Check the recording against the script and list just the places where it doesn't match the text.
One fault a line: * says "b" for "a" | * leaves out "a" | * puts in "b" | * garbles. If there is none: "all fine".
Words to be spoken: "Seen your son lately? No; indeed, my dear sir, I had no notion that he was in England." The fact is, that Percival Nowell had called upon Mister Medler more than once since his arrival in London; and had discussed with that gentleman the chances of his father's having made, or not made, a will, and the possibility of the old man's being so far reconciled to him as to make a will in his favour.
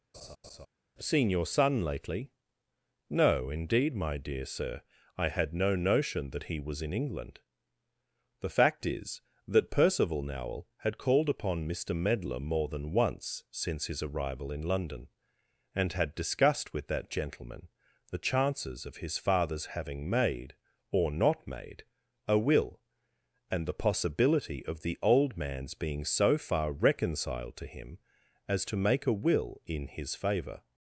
all fine